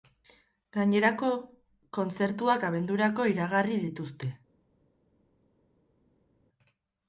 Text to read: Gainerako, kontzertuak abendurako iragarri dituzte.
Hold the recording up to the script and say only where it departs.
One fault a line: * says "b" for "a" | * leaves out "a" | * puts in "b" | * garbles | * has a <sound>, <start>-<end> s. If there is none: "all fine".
all fine